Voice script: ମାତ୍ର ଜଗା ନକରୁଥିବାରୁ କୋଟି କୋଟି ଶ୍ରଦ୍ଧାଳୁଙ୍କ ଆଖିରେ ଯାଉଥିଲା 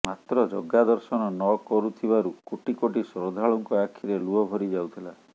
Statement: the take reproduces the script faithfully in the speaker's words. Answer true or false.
false